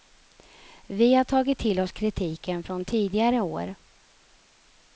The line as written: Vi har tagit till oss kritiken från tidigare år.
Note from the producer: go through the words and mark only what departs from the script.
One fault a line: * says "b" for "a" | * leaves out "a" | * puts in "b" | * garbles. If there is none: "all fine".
all fine